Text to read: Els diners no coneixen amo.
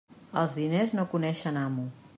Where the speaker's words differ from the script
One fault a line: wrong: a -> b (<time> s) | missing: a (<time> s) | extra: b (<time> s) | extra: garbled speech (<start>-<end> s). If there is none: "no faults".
no faults